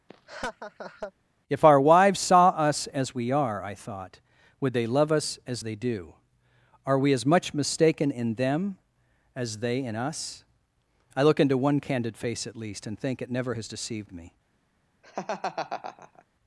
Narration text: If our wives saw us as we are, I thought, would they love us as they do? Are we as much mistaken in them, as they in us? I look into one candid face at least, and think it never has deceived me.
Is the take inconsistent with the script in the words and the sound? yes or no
yes